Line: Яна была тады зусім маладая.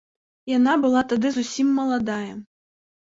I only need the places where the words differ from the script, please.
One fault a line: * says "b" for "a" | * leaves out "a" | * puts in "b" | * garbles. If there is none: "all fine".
all fine